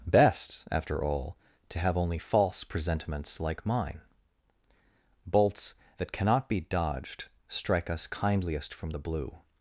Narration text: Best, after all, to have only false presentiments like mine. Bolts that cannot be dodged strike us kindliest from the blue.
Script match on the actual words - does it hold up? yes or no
yes